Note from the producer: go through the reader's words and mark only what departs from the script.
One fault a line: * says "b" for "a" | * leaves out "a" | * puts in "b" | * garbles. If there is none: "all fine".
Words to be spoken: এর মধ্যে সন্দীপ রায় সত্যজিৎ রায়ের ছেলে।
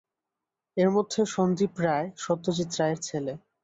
all fine